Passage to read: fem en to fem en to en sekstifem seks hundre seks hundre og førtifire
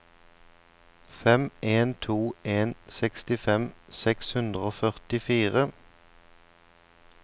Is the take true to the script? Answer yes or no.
no